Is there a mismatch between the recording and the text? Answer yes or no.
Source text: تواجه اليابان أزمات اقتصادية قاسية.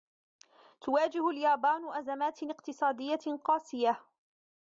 no